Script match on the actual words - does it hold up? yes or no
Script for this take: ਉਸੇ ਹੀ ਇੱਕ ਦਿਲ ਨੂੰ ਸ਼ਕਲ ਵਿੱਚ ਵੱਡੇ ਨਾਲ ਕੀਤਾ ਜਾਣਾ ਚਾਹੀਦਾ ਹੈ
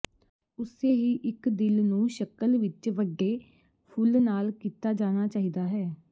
no